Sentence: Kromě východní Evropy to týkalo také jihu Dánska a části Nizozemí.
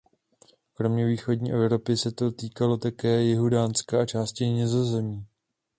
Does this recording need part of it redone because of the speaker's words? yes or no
yes